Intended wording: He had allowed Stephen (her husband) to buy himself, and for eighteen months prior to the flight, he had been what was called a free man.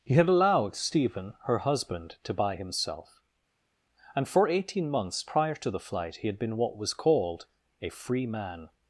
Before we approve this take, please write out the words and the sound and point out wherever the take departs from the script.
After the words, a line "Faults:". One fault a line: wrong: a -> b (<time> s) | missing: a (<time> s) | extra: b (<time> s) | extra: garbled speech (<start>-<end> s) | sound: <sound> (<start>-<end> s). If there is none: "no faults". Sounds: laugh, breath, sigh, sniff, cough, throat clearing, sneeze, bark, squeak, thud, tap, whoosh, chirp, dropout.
He had allowed Stephen (her husband) to buy himself, and for eighteen months prior to the flight, he had been what was called a free man.
Faults:
no faults